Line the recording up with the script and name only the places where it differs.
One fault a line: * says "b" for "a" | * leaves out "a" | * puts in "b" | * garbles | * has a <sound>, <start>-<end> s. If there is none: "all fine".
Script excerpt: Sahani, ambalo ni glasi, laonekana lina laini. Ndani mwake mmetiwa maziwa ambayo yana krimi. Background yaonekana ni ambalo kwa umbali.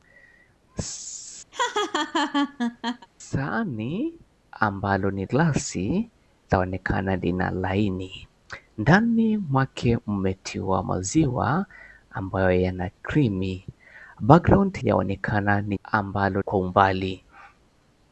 * has a laugh, 1.5-3.1 s